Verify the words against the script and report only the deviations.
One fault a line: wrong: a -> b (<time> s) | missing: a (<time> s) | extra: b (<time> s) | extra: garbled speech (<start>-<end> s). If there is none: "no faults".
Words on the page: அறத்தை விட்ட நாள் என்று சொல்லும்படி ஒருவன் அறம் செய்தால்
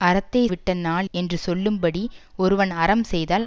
no faults